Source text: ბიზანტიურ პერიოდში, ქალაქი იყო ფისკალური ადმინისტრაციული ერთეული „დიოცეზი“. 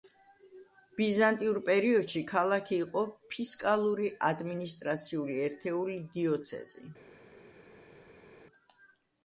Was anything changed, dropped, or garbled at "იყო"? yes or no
no